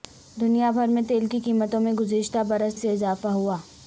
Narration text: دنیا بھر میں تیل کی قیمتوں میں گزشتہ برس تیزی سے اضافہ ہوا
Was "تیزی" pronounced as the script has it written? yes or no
no